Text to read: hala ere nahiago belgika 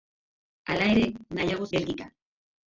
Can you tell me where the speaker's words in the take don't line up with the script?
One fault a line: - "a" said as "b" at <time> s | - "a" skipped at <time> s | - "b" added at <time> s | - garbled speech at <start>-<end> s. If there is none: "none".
none